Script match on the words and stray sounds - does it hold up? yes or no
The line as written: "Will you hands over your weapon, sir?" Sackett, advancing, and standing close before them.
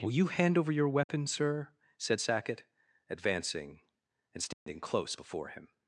no